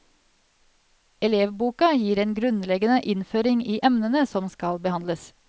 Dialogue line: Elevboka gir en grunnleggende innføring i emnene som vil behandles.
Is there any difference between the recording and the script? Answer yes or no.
yes